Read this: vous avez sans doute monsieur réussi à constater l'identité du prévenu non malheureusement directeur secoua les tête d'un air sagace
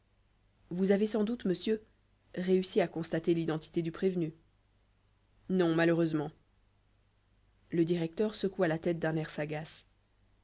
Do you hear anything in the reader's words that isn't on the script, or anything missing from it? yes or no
yes